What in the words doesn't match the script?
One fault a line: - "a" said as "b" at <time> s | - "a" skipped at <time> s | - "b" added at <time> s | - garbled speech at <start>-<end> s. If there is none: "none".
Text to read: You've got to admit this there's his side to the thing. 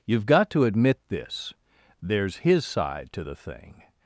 none